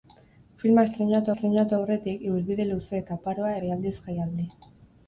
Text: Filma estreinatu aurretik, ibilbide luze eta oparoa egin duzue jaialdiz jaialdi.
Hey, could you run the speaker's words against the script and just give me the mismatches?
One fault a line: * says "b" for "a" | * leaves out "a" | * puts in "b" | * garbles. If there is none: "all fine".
* puts in "estreinatu"
* leaves out "egin duzue"